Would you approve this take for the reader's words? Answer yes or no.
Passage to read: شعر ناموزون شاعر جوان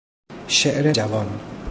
no